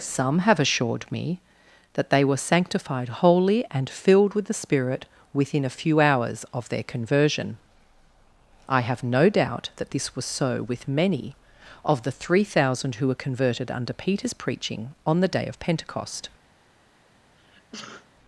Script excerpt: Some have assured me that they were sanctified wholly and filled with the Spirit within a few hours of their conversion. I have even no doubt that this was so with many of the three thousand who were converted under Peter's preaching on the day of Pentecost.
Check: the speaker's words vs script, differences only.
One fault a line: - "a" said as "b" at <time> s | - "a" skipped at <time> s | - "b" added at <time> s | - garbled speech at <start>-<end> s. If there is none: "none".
- "even" skipped at 9.0 s